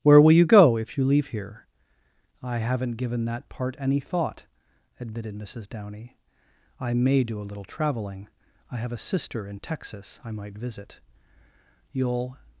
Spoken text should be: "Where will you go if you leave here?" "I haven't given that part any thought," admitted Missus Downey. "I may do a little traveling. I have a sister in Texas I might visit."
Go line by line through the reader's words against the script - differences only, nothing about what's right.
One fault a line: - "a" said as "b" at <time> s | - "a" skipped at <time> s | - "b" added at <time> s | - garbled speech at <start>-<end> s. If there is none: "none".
- "You'll" added at 11.9 s